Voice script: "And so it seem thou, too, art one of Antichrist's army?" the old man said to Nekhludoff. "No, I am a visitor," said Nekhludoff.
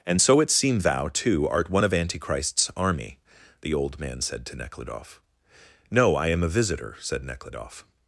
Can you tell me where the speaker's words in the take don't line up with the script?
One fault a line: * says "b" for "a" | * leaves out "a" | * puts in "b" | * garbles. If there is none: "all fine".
all fine